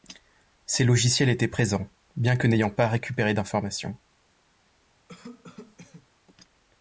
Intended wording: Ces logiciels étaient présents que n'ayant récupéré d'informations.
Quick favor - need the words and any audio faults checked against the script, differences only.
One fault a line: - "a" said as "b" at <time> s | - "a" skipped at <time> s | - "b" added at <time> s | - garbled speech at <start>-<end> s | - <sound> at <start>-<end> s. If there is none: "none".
- "bien" added at 2.1 s
- "pas" added at 2.7 s
- cough at 5.1-6.1 s